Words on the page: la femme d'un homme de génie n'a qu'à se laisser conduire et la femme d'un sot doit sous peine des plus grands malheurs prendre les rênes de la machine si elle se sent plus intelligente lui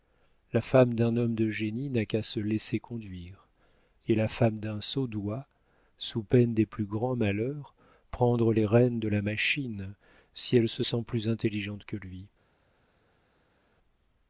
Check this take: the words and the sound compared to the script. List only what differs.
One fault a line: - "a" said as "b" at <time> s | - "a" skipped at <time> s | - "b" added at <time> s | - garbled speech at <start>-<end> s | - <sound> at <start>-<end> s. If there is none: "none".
- "que" added at 11.8 s